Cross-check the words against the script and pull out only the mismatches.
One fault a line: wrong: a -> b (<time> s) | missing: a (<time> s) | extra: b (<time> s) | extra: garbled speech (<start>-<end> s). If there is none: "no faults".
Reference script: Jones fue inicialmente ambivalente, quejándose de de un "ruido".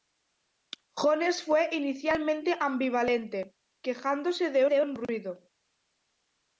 no faults